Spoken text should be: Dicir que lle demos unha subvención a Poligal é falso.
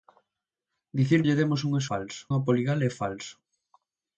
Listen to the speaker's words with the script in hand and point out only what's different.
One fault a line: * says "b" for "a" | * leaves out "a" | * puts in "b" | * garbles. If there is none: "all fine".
* leaves out "que"
* says "falso" for "subvención"